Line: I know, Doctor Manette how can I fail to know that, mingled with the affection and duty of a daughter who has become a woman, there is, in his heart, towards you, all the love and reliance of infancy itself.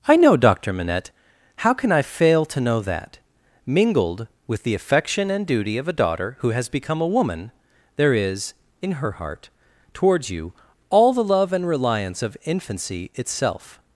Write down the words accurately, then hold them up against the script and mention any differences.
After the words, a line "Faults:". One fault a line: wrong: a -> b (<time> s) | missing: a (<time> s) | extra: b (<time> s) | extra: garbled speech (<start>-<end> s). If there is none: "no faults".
I know, Doctor Manette how can I fail to know that, mingled with the affection and duty of a daughter who has become a woman, there is, in her heart, towards you, all the love and reliance of infancy itself.
Faults:
wrong: his -> her (8.9 s)